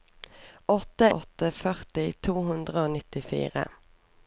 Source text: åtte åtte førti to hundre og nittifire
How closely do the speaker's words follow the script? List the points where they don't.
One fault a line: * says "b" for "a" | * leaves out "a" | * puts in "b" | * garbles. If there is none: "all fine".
all fine